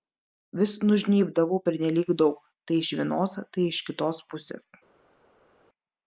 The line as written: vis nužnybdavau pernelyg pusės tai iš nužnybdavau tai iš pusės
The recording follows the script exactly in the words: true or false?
false